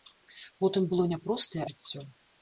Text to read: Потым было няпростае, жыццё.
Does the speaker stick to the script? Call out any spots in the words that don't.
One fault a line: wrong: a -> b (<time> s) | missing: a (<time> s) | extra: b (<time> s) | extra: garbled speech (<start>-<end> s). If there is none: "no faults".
no faults